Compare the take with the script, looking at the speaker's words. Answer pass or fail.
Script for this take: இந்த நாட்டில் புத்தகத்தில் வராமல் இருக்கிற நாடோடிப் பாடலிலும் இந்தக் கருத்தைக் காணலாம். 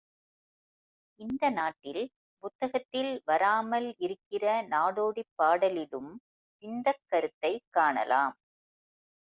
pass